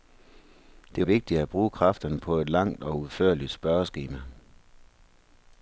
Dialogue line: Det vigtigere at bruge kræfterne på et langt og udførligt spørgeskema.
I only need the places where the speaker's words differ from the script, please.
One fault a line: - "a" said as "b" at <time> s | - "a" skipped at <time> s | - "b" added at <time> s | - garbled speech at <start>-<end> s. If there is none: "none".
none